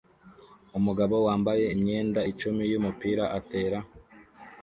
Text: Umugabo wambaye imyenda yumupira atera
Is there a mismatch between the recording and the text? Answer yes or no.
yes